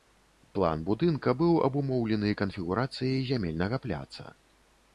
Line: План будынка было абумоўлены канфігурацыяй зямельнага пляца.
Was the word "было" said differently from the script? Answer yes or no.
yes